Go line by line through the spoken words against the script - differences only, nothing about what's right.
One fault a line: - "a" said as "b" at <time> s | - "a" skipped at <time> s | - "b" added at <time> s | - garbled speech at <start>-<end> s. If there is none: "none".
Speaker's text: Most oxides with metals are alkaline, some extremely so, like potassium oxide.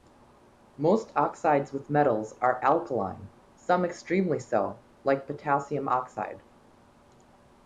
none